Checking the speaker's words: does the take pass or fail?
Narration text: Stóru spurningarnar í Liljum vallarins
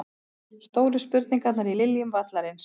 pass